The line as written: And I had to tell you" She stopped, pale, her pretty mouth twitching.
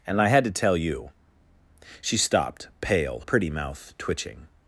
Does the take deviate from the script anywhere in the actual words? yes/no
yes